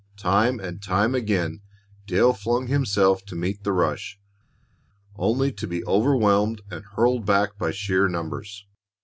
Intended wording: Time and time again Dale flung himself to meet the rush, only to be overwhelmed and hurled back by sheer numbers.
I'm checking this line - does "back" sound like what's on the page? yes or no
yes